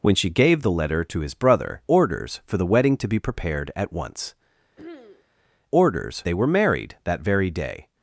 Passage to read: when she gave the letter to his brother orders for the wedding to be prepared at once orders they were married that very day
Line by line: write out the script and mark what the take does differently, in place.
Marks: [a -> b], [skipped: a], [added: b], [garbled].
when she gave the letter to his brother orders for the wedding to be prepared at once orders they were married that very day